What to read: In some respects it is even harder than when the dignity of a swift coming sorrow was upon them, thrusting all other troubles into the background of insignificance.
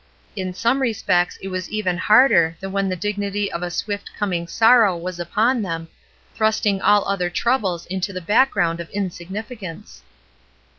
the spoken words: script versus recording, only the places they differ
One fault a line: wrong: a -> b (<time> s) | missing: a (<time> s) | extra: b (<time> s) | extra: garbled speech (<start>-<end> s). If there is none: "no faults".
wrong: is -> was (1.5 s)